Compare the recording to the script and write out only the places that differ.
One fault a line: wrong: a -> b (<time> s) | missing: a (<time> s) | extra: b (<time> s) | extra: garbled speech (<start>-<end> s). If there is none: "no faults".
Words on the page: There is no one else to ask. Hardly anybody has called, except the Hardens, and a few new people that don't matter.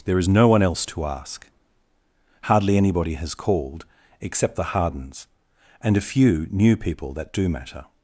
wrong: don't -> do (7.3 s)